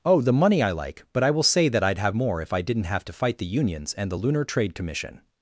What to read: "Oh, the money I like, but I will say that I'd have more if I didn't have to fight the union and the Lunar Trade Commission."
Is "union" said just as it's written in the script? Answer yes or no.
no